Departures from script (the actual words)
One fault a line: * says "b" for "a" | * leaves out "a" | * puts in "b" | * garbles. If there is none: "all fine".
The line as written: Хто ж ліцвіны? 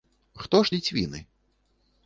all fine